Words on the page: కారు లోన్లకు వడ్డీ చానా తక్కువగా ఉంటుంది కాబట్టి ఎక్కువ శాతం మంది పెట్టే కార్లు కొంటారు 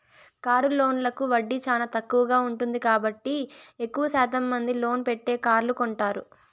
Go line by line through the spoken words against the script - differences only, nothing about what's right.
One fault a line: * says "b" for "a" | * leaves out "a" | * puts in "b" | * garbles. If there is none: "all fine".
* puts in "లోన్"